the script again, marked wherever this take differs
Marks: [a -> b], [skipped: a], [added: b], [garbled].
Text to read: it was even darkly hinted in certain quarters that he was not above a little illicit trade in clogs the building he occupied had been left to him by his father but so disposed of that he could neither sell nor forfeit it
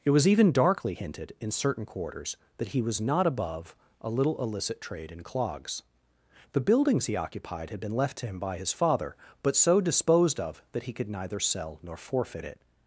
it was even darkly hinted in certain quarters that he was not above a little illicit trade in clogs the [building -> buildings] he occupied had been left to him by his father but so disposed of that he could neither sell nor forfeit it